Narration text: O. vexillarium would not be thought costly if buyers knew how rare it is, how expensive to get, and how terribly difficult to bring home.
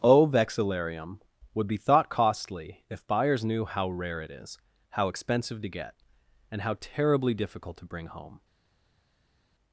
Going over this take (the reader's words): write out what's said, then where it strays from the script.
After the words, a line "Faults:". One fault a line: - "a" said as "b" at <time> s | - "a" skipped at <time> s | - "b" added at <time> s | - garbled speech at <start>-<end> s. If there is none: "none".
O. vexillarium would be thought costly if buyers knew how rare it is, how expensive to get, and how terribly difficult to bring home.
Faults:
- "not" skipped at 1.7 s